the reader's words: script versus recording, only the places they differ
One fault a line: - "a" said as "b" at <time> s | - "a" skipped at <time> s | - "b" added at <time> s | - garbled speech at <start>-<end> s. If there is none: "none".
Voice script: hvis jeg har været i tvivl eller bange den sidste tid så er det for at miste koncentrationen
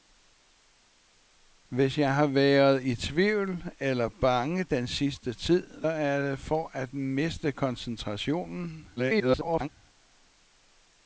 - "så" skipped at 5.8 s
- garbled speech at 9.0-9.7 s